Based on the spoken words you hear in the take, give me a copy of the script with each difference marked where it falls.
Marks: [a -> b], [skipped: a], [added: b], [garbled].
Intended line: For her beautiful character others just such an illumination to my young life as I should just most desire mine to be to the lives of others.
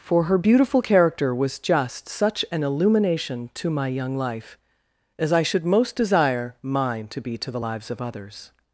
For her beautiful character [others -> was] just such an illumination to my young life as I should [skipped: just] most desire mine to be to the lives of others.